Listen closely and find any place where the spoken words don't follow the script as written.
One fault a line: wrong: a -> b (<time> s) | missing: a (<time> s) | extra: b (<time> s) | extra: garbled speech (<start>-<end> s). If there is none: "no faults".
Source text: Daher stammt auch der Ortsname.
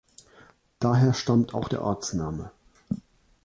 no faults